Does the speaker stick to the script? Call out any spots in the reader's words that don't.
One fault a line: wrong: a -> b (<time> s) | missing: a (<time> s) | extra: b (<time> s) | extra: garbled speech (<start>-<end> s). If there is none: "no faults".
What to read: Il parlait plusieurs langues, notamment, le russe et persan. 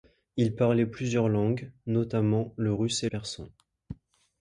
no faults